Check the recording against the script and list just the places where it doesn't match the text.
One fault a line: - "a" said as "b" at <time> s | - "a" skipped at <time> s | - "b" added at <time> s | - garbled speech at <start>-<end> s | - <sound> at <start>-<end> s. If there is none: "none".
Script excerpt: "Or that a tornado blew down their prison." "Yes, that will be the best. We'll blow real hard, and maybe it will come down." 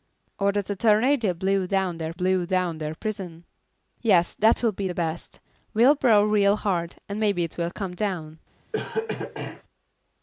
- "blew down their" added at 2.1 s
- cough at 8.7-9.6 s